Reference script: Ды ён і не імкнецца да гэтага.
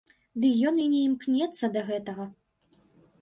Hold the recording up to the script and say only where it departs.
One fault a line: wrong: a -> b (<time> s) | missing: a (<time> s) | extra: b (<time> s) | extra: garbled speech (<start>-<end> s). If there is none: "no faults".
no faults